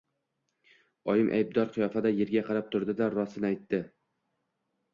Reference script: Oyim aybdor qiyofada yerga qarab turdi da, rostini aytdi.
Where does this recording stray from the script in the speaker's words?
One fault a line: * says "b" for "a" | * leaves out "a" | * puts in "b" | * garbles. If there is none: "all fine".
all fine